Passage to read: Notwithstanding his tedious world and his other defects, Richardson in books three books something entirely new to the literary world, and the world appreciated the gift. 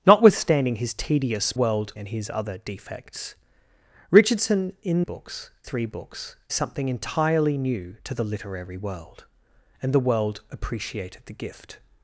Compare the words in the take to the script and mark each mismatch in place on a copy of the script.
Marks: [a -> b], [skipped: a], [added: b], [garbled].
Notwithstanding his tedious world and his other defects, Richardson in books three books something entirely new to the literary world, and the world appreciated the gift.